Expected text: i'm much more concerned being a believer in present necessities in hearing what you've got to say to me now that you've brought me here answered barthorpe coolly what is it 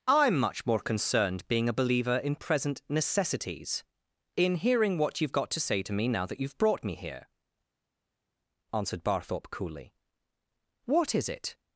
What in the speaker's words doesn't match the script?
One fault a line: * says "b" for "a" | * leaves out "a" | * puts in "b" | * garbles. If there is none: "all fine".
all fine